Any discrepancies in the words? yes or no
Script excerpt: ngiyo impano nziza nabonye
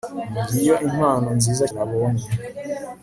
no